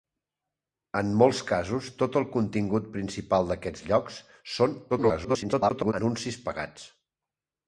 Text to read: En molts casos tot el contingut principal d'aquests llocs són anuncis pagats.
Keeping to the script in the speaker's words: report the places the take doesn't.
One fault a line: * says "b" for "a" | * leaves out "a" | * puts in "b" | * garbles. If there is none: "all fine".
* garbles